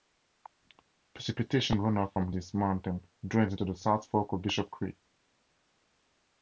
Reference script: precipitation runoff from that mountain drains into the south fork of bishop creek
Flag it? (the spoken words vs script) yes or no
yes